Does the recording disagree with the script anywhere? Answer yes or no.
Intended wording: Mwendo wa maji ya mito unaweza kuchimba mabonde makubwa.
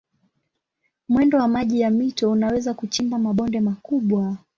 no